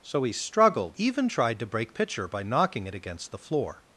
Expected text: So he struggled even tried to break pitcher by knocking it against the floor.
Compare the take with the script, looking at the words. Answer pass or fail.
pass